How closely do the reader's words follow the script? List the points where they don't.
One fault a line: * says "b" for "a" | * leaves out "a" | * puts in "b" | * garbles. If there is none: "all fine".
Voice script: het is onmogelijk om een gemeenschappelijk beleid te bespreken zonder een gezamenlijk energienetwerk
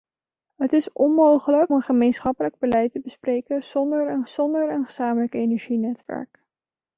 * leaves out "om"
* puts in "zonder een"